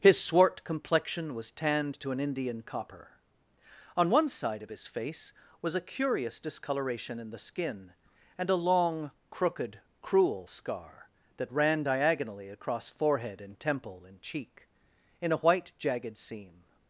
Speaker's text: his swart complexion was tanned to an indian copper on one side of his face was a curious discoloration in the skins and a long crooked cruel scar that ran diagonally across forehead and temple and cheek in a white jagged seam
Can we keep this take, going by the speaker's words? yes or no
no